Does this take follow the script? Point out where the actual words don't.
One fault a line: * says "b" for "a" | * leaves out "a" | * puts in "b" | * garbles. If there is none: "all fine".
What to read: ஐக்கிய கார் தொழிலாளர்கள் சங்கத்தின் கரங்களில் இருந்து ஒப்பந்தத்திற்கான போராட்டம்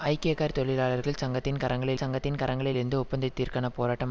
* puts in "சங்கத்தின் கரங்களில்"